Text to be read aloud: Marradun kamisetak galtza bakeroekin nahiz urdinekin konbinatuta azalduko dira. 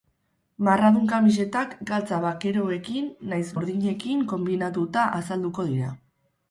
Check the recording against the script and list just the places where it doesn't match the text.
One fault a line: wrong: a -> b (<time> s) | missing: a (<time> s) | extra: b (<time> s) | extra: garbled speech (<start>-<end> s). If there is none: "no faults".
no faults